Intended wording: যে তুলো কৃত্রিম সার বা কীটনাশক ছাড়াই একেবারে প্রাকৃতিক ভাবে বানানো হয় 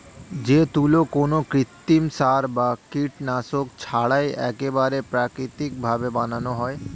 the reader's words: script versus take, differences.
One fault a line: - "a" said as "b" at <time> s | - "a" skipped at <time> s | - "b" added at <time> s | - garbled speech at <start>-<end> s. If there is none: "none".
- "কোনো" added at 1.1 s